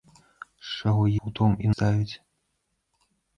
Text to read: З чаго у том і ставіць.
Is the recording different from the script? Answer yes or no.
no